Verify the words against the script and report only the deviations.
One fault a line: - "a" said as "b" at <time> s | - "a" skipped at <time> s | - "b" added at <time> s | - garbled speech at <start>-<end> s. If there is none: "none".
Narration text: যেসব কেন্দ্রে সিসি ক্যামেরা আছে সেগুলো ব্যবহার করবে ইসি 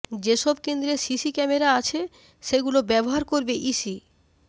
none